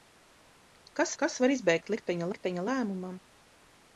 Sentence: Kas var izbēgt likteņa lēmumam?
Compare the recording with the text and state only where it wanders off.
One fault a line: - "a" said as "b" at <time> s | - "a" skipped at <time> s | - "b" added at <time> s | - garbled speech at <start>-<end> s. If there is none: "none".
- "kas" added at 1.2 s
- "likteņa" added at 2.3 s